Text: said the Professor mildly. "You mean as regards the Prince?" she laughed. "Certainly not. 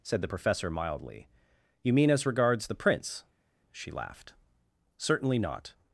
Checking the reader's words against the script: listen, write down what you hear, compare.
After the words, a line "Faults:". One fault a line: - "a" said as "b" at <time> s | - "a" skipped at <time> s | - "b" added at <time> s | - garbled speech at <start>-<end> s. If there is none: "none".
said the Professor mildly. "You mean as regards the Prince?" she laughed. "Certainly not.
Faults:
none